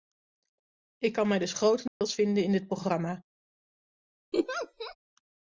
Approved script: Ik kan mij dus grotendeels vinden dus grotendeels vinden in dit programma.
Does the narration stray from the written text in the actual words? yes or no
yes